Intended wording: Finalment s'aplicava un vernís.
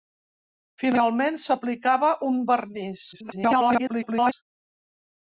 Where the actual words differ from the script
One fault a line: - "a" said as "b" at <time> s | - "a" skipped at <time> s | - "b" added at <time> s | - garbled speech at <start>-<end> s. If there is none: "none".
- garbled speech at 3.1-4.3 s